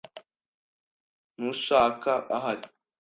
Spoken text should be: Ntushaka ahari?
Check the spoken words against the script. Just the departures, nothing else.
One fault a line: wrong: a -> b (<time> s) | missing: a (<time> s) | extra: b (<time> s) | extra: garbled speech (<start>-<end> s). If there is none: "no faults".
no faults